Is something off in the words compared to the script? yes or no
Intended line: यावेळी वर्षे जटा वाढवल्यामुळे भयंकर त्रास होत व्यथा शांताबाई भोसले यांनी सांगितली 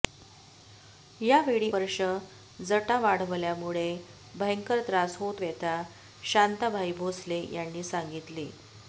no